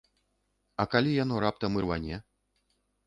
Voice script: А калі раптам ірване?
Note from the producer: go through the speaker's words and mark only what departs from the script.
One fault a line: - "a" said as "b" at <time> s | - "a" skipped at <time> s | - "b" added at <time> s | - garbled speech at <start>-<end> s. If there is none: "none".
- "яно" added at 1.2 s